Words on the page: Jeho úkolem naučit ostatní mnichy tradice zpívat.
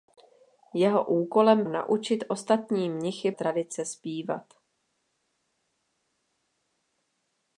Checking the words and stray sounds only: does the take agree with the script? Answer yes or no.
yes